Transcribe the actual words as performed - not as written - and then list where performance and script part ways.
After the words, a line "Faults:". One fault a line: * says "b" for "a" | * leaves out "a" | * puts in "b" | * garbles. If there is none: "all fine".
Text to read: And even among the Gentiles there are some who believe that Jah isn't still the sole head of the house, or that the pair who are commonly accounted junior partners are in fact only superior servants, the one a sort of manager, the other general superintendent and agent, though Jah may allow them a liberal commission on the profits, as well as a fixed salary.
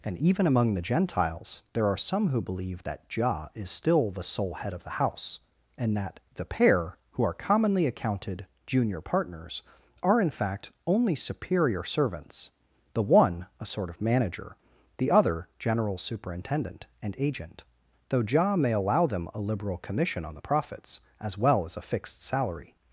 And even among the Gentiles there are some who believe that Jah is still the sole head of the house, and that the pair who are commonly accounted junior partners are in fact only superior servants, the one a sort of manager, the other general superintendent and agent, though Jah may allow them a liberal commission on the profits, as well as a fixed salary.
Faults:
* says "is" for "isn't"
* says "and" for "or"